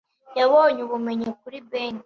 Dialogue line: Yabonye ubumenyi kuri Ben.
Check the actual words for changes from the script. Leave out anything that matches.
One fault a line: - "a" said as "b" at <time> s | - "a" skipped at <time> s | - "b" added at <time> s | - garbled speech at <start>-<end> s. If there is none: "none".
none